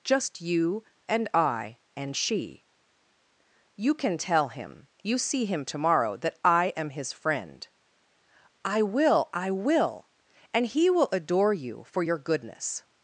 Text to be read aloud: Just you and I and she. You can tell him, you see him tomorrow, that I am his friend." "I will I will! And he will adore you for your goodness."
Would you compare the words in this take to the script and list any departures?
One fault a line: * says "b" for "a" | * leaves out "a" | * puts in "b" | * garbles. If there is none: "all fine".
all fine